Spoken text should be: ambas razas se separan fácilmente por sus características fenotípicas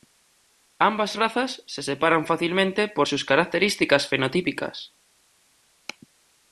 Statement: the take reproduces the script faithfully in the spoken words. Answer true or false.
true